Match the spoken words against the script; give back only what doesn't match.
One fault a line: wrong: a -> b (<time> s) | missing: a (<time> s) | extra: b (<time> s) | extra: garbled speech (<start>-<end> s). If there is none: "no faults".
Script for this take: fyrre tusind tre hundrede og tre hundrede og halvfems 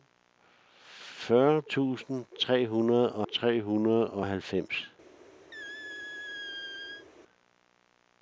no faults